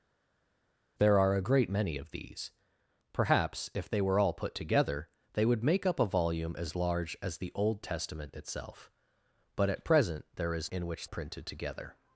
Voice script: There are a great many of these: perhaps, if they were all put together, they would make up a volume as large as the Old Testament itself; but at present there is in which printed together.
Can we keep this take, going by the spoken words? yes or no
yes